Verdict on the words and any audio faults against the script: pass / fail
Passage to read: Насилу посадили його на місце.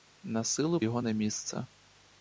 fail